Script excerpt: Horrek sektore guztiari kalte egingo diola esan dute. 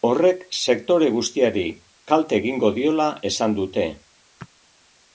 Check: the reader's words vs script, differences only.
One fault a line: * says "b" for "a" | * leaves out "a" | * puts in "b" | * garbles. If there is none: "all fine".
all fine